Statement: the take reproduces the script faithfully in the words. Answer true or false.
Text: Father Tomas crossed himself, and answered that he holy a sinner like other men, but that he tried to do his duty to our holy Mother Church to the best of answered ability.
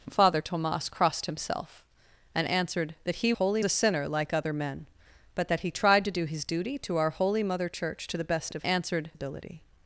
true